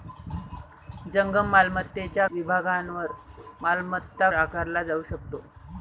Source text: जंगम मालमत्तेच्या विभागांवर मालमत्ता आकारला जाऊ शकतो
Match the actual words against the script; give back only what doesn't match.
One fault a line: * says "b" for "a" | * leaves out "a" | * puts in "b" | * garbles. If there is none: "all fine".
all fine